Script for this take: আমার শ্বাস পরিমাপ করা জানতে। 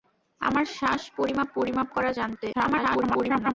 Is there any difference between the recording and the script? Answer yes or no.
yes